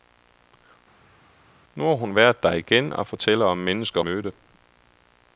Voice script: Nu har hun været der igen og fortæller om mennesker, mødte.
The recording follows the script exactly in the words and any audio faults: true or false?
true